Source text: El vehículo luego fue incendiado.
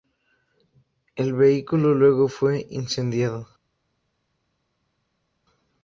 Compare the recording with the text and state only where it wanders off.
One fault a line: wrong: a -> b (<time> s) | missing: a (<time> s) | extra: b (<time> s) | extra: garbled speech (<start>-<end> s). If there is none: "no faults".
no faults